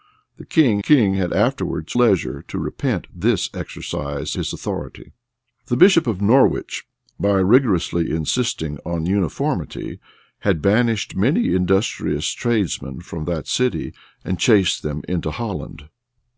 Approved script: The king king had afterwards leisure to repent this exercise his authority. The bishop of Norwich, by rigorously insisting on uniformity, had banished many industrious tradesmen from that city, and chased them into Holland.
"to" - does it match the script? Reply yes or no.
yes